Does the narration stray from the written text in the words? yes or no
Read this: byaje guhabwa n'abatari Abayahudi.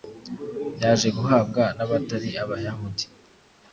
no